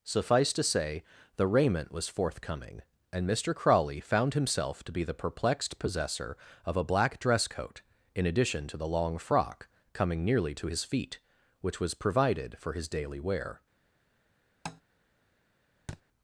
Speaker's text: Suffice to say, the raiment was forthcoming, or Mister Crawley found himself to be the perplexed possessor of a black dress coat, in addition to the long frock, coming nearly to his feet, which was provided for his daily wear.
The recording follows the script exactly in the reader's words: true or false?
false